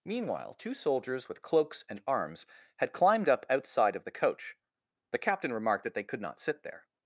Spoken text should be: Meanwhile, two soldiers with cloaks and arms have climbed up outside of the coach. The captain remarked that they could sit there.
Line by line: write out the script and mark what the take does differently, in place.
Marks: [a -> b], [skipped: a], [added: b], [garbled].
Meanwhile, two soldiers with cloaks and arms [have -> had] climbed up outside of the coach. The captain remarked that they could [added: not] sit there.